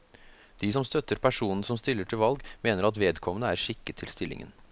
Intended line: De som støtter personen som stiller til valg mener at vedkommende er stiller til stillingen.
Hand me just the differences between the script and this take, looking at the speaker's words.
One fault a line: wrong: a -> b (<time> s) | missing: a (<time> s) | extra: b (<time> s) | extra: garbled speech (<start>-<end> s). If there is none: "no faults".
wrong: stiller -> skikket (3.6 s)